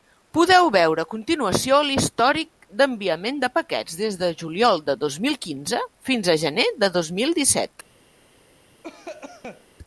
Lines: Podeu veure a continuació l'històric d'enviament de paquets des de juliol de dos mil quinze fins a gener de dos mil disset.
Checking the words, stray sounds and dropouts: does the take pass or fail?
fail